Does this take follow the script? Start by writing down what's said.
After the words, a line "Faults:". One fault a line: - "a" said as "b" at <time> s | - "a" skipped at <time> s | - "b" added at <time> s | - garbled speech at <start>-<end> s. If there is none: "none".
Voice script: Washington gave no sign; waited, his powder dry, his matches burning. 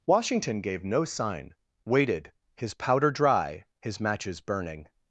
Washington gave no sign; waited, his powder dry, his matches burning.
Faults:
none